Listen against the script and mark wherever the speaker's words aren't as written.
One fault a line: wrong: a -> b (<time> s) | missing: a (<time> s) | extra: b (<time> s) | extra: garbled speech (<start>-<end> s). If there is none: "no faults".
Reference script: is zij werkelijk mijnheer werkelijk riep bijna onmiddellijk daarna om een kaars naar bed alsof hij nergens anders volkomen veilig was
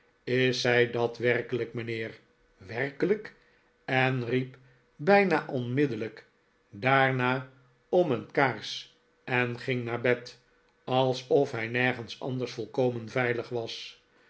extra: dat (0.9 s)
extra: en (3.8 s)
extra: en ging (9.2 s)